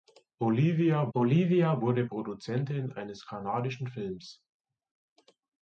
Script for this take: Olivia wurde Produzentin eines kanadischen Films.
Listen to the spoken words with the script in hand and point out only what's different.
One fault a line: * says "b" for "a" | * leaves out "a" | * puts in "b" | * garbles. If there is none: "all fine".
* puts in "olivia"